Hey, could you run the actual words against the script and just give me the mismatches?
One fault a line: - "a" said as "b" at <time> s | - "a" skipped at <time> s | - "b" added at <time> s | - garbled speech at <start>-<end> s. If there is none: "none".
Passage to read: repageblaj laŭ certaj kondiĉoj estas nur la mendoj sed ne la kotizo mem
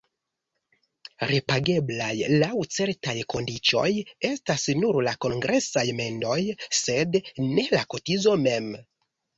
- "kongresaj" added at 5.3 s